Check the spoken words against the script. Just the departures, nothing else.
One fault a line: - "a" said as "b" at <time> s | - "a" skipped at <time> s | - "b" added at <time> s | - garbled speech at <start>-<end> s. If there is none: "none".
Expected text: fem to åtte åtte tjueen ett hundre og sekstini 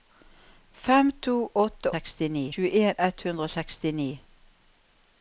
- "åtte" said as "sekstini" at 1.9 s